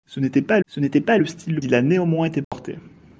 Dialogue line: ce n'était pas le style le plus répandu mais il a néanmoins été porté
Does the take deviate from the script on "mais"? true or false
true